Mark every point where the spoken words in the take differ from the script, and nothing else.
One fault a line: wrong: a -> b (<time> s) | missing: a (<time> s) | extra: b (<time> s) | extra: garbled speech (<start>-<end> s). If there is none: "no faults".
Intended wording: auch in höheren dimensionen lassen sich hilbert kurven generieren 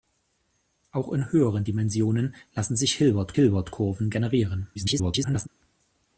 extra: hilbert (3.3 s)
extra: garbled speech (4.7-5.5 s)